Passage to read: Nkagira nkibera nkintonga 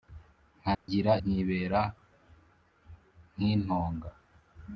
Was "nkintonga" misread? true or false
false